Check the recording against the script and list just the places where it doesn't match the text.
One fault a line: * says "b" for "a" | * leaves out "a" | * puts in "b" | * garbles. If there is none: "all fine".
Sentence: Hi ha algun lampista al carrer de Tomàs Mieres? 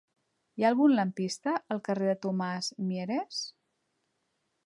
all fine